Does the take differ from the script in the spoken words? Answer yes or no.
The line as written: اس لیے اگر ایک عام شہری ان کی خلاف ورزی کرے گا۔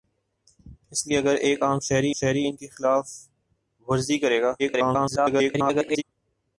yes